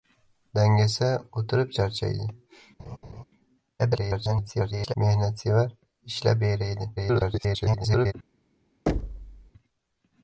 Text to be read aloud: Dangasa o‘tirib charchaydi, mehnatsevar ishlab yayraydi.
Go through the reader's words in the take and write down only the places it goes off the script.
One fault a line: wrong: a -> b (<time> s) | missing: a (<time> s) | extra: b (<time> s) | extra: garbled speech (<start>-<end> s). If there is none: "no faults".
extra: garbled speech (3.8-4.9 s)
extra: garbled speech (7.0-8.1 s)